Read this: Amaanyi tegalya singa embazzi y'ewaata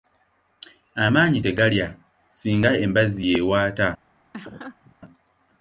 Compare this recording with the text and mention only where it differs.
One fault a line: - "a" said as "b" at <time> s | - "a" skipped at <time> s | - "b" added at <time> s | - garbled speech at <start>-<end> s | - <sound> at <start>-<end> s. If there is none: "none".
- laugh at 4.3-5.0 s